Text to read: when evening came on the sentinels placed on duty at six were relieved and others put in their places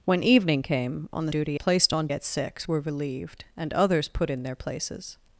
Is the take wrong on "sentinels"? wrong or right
wrong